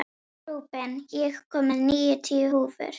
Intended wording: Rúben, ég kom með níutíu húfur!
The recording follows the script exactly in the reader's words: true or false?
true